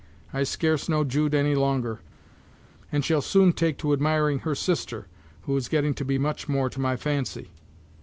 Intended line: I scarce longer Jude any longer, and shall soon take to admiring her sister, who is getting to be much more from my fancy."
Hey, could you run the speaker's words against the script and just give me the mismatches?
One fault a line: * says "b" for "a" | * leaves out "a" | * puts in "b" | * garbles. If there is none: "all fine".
* says "know" for "longer"
* says "to" for "from"